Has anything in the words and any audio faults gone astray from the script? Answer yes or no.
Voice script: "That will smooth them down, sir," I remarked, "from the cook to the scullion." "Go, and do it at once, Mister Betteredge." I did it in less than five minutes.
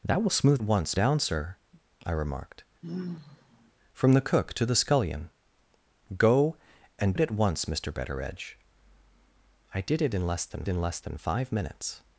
yes